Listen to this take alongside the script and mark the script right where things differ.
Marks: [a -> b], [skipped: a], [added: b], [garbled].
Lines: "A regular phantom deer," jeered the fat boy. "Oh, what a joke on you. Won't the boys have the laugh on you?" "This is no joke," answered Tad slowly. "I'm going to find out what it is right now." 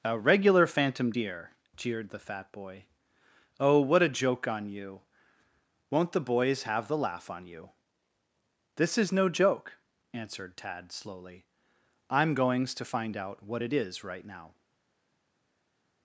"A regular phantom deer," jeered the fat boy. "Oh, what a joke on you. Won't the boys have the laugh on you?" "This is no joke," answered Tad slowly. "I'm [going -> goings] to find out what it is right now."